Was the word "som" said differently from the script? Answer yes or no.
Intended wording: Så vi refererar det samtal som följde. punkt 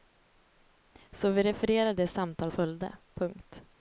yes